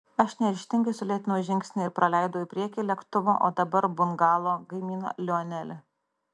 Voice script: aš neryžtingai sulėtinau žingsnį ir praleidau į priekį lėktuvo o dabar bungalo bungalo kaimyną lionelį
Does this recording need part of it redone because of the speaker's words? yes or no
yes